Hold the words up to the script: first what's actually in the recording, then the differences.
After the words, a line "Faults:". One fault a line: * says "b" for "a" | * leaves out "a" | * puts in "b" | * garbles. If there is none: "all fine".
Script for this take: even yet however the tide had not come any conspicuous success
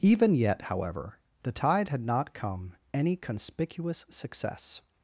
even yet however the tide had not come any conspicuous success
Faults:
all fine